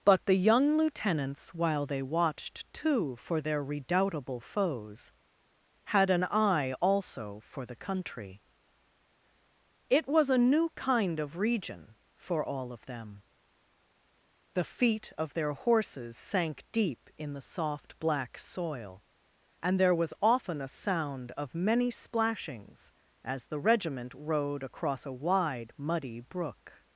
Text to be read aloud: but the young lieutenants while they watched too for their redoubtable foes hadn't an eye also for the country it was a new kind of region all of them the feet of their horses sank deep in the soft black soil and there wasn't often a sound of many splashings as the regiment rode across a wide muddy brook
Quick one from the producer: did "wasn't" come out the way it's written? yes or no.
no